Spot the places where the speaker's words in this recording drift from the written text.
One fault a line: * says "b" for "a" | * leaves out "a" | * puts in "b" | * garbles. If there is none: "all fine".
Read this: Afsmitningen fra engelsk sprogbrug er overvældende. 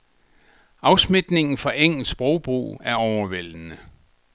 all fine